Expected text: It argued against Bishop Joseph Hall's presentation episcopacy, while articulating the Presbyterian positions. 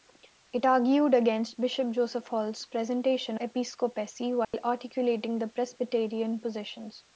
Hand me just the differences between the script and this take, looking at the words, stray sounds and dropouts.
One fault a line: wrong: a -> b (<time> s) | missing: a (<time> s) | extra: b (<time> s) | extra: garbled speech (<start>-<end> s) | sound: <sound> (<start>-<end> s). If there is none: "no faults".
sound: dropout (4.4-4.5 s)